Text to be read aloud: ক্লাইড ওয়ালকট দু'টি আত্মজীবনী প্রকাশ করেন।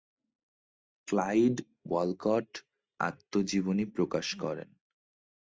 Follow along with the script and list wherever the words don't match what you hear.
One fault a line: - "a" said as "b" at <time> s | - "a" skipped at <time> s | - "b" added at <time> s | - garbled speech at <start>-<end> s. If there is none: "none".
- "দু'টি" skipped at 2.5 s